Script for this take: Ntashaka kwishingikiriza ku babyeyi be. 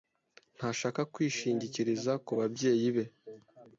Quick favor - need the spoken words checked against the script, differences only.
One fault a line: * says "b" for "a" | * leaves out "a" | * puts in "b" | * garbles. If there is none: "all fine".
all fine